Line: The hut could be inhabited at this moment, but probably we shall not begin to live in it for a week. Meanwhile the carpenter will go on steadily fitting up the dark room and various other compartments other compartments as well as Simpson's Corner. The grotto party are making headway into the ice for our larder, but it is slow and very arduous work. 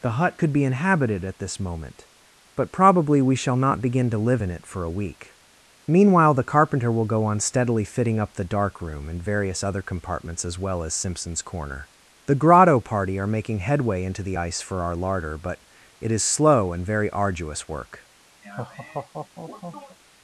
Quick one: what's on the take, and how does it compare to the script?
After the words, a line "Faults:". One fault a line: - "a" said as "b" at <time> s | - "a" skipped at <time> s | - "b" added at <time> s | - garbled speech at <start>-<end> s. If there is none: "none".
The hut could be inhabited at this moment, but probably we shall not begin to live in it for a week. Meanwhile the carpenter will go on steadily fitting up the dark room and various other compartments as well as Simpson's Corner. The grotto party are making headway into the ice for our larder, but it is slow and very arduous work.
Faults:
- "other compartments" skipped at 10.4 s